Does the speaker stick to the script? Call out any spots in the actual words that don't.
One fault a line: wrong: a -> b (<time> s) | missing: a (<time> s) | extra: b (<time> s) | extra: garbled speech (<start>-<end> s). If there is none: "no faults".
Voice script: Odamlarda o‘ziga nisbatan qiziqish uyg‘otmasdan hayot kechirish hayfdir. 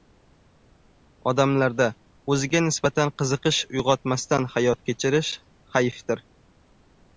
no faults